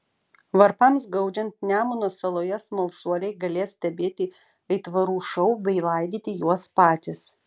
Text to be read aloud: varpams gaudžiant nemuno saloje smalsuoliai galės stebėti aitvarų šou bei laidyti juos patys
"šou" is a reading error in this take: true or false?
false